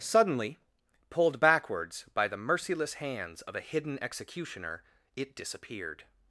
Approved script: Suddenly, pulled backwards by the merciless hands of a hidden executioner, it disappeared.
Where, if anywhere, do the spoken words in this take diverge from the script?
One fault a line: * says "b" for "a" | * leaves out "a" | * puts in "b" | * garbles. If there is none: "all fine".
all fine